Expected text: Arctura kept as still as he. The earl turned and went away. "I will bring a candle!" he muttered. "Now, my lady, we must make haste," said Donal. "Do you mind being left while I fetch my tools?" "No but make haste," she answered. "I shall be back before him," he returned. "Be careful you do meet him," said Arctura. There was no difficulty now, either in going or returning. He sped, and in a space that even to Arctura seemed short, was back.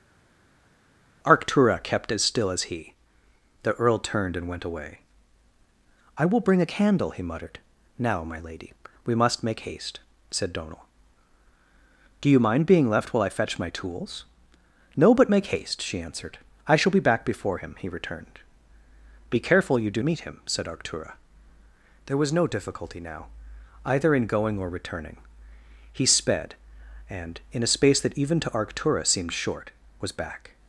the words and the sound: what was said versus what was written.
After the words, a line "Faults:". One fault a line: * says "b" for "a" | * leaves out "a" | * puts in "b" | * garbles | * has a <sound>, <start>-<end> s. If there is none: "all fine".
Arctura kept as still as he. The earl turned and went away. "I will bring a candle!" he muttered. "Now, my lady, we must make haste," said Donal. "Do you mind being left while I fetch my tools?" "No but make haste," she answered. "I shall be back before him," he returned. "Be careful you do meet him," said Arctura. There was no difficulty now, either in going or returning. He sped, and in a space that even to Arctura seemed short, was back.
Faults:
all fine